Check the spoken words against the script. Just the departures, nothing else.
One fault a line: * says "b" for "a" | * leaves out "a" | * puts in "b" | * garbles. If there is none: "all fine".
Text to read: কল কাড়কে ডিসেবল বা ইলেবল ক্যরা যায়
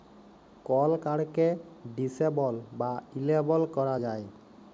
all fine